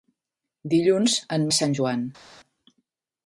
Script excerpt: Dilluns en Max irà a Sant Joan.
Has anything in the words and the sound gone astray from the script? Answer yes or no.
yes